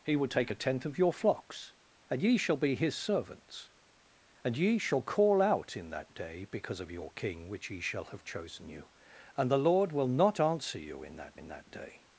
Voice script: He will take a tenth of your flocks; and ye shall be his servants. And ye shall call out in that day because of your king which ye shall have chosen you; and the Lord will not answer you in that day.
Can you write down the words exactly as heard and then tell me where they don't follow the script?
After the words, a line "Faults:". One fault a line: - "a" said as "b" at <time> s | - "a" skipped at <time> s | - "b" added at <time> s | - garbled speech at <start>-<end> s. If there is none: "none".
He will take a tenth of your flocks; and ye shall be his servants. And ye shall call out in that day because of your king which ye shall have chosen you; and the Lord will not answer you in that in that day.
Faults:
- "in that" added at 11.3 s